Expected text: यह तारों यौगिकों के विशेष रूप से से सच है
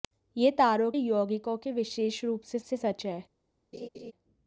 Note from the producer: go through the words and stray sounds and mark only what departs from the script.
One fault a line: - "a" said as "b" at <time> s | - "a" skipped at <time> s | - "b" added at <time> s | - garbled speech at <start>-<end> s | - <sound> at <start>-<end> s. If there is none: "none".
- laugh at 3.7-4.1 s